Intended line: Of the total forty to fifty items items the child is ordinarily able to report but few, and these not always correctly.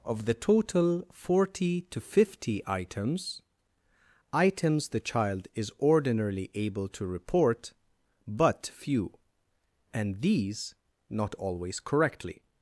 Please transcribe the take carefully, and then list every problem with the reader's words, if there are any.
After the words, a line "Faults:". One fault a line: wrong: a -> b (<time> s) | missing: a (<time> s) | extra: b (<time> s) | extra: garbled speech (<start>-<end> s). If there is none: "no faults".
Of the total forty to fifty items items the child is ordinarily able to report but few, and these not always correctly.
Faults:
no faults